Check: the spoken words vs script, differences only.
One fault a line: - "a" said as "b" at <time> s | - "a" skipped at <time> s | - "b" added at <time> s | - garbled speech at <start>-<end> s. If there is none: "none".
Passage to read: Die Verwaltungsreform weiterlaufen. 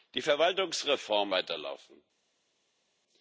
none